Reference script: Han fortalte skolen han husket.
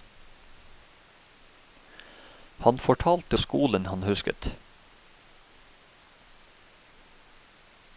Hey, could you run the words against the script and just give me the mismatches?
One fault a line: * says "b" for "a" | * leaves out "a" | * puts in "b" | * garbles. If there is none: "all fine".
all fine